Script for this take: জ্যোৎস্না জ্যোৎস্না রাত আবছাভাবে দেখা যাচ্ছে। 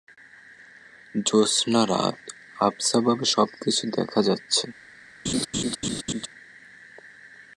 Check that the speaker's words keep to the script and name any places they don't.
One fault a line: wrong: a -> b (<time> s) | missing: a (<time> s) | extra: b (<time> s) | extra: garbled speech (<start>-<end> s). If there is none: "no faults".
missing: জ্যোৎস্না (1.8 s)
extra: সবকিছু (3.3 s)